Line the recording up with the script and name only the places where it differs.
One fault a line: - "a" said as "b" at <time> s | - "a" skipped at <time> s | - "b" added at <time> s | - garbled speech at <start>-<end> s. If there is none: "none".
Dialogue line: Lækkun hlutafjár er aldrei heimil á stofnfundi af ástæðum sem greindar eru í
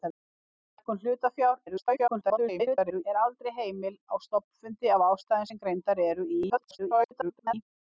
- garbled speech at 1.7-3.0 s
- garbled speech at 6.5-7.5 s